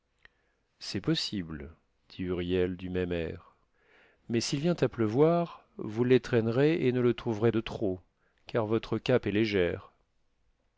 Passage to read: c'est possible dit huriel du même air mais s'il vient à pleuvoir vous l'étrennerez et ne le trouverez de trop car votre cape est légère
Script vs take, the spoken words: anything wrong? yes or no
no